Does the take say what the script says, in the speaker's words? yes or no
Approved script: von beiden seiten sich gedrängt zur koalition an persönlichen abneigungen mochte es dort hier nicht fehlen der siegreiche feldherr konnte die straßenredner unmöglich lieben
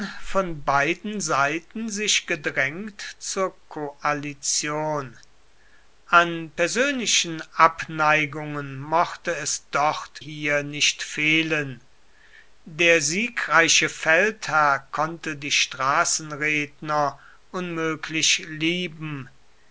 yes